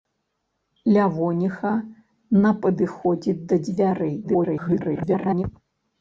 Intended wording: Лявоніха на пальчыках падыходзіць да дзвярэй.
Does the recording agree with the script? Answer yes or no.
no